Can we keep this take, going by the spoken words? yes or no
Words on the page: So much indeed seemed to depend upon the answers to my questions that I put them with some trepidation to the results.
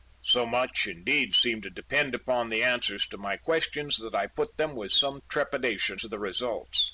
yes